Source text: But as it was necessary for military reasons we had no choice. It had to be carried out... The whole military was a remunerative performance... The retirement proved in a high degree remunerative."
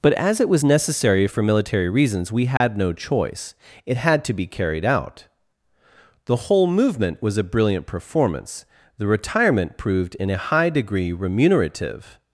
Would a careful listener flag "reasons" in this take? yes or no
no